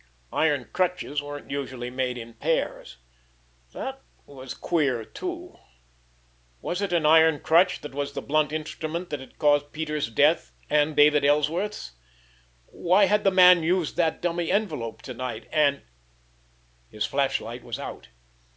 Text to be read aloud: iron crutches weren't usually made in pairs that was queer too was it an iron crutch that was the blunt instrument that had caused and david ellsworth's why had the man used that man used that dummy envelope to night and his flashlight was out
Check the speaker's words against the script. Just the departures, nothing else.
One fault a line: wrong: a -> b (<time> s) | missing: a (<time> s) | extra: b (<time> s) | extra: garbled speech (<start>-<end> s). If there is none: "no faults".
extra: peters death (9.7 s)
missing: man used that (14.2 s)